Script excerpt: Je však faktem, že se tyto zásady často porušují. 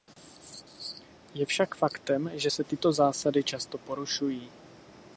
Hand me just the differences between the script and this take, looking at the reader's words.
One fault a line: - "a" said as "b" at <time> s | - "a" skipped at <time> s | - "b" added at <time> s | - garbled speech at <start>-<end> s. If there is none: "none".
none